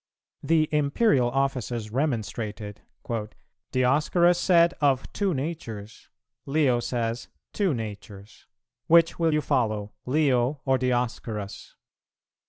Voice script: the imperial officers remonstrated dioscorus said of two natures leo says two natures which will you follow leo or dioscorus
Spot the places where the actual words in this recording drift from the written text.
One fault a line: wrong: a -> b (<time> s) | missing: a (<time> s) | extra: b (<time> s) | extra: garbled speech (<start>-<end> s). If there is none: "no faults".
no faults